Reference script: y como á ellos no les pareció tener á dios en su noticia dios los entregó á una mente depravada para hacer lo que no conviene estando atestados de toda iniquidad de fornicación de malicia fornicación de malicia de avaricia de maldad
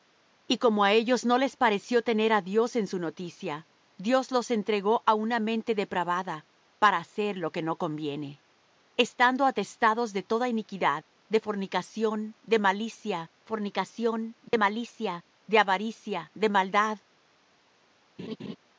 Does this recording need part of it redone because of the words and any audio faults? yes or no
yes